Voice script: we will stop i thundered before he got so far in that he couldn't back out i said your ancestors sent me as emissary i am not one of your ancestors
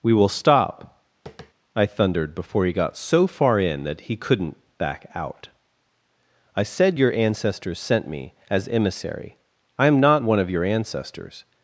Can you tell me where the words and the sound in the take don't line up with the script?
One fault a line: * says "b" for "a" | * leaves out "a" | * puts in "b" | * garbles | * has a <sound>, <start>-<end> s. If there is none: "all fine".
* has a tap, 1.3-1.5 s